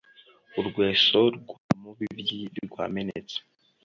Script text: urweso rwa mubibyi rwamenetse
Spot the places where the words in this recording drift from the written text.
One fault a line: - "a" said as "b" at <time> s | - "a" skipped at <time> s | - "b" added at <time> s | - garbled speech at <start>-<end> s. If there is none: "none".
none